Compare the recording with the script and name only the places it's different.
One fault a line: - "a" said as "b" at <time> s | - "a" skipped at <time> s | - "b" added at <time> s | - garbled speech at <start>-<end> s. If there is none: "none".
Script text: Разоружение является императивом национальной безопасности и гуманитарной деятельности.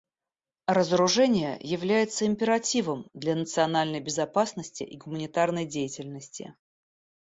- "для" added at 3.1 s